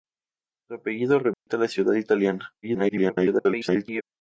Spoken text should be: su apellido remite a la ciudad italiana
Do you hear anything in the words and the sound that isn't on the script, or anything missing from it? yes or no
yes